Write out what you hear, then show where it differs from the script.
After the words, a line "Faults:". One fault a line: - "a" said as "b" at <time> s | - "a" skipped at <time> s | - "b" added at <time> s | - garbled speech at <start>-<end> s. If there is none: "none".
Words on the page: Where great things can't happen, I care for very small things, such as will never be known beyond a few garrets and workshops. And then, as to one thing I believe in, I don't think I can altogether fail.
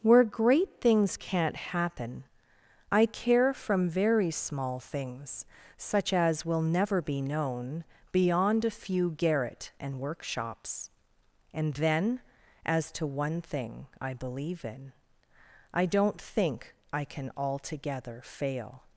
Where great things can't happen, I care from very small things, such as will never be known beyond a few garret and workshops. And then, as to one thing I believe in, I don't think I can altogether fail.
Faults:
- "for" said as "from" at 3.5 s
- "garrets" said as "garret" at 9.1 s